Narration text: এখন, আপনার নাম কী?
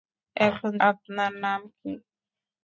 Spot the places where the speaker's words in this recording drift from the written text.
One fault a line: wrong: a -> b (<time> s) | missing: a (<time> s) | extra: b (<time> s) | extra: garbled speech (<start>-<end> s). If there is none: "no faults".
no faults